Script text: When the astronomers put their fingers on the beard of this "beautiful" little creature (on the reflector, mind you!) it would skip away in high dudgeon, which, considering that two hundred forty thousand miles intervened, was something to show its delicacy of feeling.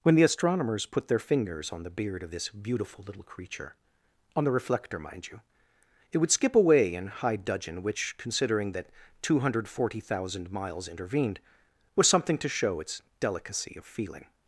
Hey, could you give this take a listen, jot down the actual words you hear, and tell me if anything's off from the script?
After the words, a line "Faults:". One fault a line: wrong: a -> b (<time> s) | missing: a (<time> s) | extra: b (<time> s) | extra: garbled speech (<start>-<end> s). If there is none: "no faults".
When the astronomers put their fingers on the beard of this "beautiful" little creature (on the reflector, mind you!) it would skip away in high dudgeon, which, considering that two hundred forty thousand miles intervened, was something to show its delicacy of feeling.
Faults:
no faults